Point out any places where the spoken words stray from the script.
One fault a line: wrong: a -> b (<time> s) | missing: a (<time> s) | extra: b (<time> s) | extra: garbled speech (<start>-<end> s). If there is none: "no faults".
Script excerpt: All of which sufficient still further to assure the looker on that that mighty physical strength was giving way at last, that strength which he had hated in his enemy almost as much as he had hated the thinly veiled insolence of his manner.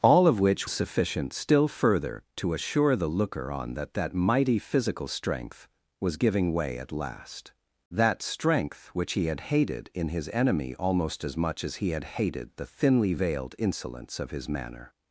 no faults